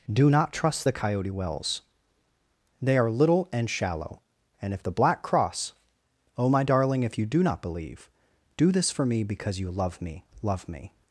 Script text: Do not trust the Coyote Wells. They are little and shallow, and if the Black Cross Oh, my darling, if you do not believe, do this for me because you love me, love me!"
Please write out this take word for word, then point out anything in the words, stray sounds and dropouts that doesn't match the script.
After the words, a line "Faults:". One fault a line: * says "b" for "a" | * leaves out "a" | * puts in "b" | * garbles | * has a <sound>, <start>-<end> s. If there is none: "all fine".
Do not trust the Coyote Wells. They are little and shallow, and if the Black Cross Oh, my darling, if you do not believe, do this for me because you love me, love me!"
Faults:
all fine